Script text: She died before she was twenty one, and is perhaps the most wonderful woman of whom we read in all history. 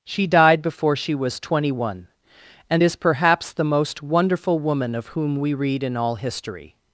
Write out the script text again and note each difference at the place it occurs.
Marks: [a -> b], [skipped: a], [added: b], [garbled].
She died before she was twenty one, and is perhaps the most wonderful woman of whom we read in all history.